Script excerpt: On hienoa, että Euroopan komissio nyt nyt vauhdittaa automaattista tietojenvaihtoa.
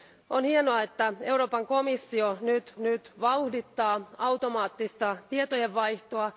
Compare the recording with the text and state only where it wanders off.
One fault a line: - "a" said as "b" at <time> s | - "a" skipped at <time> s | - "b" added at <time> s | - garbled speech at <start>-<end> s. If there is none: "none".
none